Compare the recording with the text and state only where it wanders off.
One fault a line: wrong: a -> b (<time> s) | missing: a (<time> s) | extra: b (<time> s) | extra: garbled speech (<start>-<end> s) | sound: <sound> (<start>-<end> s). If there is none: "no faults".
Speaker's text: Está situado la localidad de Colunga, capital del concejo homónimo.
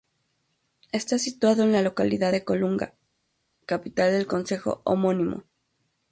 extra: en (1.6 s)